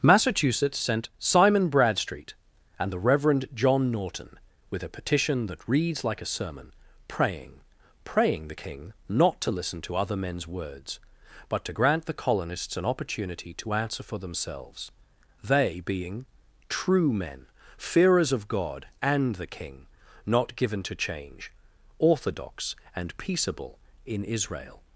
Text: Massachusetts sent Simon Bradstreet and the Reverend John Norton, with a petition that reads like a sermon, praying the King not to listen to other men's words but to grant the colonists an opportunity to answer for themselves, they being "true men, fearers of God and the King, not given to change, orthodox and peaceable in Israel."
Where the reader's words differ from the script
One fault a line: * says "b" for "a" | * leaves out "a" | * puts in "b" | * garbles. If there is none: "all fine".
* puts in "praying"